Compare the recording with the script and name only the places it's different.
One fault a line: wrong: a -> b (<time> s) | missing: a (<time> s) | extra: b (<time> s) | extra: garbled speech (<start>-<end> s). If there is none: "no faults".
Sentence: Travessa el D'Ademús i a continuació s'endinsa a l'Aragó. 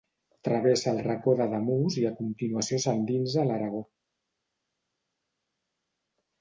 extra: Racó (1.1 s)